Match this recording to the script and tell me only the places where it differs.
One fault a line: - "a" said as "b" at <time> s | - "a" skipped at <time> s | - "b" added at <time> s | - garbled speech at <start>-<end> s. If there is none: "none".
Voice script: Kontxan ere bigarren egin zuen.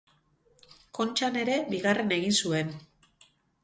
none